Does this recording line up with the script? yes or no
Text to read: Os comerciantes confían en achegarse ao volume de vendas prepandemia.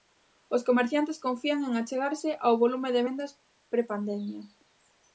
yes